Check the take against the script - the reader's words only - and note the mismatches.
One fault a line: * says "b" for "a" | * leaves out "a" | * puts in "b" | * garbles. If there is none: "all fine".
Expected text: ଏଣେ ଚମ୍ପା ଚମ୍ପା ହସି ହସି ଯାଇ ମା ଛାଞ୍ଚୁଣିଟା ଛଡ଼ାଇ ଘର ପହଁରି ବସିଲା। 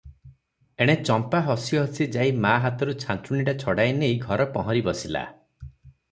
* leaves out "ଚମ୍ପା"
* puts in "ହାତରୁ"
* puts in "ନେଇ"